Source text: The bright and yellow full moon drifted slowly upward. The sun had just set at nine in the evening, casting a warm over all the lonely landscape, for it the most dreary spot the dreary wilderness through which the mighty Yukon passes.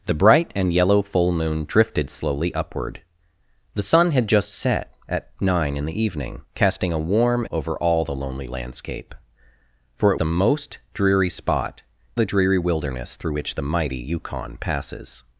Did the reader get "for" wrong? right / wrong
right